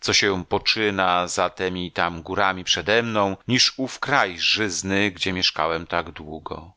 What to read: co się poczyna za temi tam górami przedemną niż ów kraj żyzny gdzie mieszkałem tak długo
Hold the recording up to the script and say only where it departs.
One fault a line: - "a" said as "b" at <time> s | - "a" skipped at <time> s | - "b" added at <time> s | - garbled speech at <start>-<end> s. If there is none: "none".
none